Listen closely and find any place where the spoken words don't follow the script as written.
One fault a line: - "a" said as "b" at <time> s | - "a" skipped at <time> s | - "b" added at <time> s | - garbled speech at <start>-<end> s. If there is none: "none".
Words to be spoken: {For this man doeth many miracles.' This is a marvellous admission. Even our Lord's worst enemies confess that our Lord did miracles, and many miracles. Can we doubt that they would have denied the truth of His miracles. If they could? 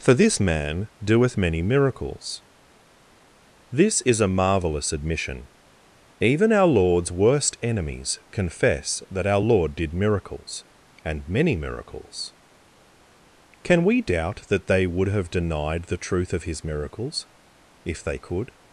none